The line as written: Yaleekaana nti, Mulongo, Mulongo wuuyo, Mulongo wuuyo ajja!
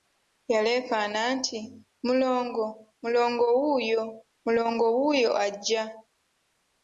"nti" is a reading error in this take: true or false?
false